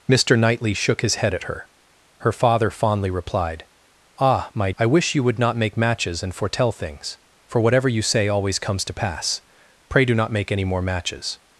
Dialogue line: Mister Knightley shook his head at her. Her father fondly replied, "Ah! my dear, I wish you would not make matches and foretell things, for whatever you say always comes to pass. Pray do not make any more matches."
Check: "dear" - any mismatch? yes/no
yes